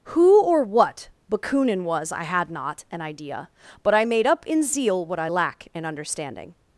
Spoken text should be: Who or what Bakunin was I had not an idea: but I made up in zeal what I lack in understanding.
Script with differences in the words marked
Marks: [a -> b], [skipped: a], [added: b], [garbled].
Who or what Bakunin was I had not an idea: but I made up in zeal what I lack in understanding.